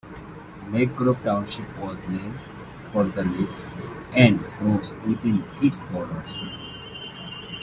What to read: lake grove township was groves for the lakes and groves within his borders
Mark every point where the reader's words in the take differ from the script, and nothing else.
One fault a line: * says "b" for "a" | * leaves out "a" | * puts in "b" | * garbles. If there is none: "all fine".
* says "named" for "groves"
* says "its" for "his"